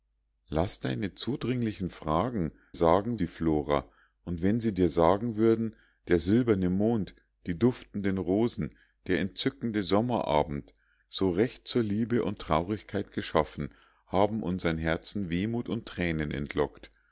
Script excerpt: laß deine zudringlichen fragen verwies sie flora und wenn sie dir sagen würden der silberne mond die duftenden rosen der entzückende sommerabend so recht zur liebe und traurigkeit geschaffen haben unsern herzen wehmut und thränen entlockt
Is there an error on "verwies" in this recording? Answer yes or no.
yes